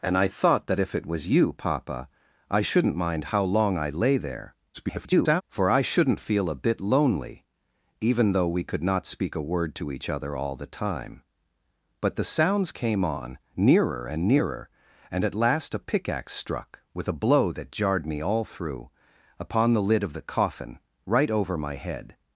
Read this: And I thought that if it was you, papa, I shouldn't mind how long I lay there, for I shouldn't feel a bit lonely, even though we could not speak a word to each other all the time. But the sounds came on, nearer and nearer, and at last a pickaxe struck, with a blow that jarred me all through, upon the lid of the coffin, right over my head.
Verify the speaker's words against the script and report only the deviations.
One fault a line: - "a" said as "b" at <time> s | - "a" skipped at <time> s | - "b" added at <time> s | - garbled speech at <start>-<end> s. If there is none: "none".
- garbled speech at 4.7-5.4 s